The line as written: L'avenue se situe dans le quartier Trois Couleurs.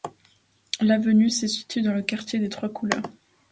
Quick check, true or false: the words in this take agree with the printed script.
false